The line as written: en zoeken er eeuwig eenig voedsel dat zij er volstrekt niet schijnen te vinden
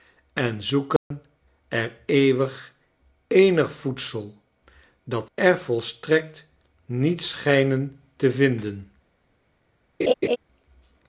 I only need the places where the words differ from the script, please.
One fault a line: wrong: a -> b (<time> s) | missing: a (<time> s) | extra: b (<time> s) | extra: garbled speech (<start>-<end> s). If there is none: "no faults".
missing: zij (5.3 s)